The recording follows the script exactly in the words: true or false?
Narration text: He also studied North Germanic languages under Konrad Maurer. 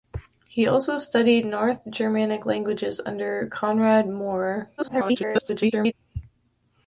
false